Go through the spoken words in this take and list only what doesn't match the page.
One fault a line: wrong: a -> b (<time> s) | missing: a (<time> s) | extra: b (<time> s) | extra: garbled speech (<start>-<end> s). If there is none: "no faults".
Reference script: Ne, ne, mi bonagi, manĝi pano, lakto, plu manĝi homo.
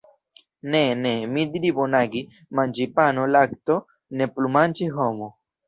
extra: diri (1.6 s)
extra: ne (4.2 s)